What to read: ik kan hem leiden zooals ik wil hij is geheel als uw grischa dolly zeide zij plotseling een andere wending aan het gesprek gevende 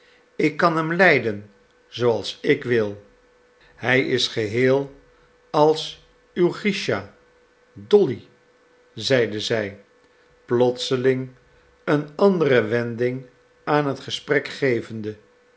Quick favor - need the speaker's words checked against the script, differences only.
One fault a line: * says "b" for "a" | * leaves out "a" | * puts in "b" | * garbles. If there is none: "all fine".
all fine